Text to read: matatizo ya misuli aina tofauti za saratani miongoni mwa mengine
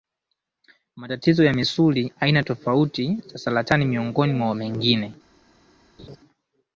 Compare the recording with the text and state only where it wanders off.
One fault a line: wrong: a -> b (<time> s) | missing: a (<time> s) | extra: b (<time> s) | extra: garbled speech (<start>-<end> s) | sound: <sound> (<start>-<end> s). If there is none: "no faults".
sound: laugh (6.0-6.2 s)